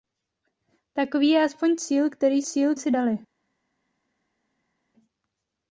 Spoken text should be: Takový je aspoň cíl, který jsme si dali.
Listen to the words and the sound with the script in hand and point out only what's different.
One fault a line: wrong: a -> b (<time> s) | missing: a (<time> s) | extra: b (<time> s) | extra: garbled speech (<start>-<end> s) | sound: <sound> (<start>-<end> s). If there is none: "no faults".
wrong: jsme -> cíl (2.4 s)